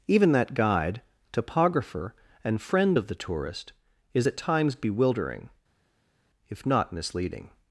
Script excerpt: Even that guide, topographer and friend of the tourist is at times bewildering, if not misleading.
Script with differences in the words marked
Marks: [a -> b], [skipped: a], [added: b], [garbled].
Even that guide, topographer and friend of the tourist is at times bewildering, if not misleading.